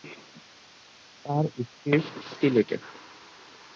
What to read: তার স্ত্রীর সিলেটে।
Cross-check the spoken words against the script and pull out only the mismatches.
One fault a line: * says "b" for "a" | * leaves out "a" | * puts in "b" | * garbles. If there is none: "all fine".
all fine